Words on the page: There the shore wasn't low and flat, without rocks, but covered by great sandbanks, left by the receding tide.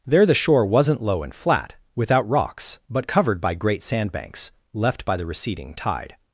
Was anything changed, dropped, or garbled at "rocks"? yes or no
no